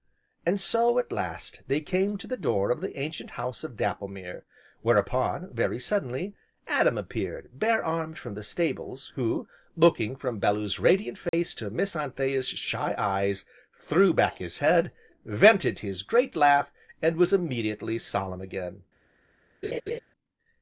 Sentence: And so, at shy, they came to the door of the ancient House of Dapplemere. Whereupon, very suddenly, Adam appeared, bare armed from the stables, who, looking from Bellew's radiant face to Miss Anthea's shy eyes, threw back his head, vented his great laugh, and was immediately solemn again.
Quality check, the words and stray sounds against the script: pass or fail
fail